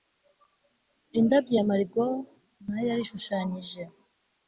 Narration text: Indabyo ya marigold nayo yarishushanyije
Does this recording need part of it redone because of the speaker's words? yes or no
no